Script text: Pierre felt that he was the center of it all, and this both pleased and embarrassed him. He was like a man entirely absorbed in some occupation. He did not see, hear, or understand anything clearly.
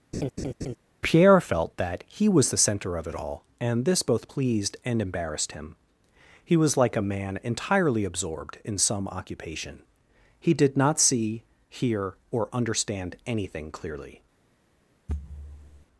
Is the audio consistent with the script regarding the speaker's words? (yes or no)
yes